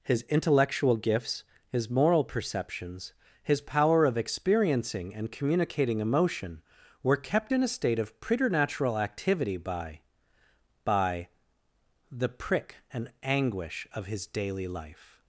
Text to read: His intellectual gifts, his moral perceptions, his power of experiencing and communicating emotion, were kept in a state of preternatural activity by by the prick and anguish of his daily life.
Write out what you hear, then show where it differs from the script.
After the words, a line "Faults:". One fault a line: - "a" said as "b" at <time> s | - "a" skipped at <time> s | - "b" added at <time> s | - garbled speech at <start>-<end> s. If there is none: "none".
His intellectual gifts, his moral perceptions, his power of experiencing and communicating emotion, were kept in a state of preternatural activity by by the prick and anguish of his daily life.
Faults:
none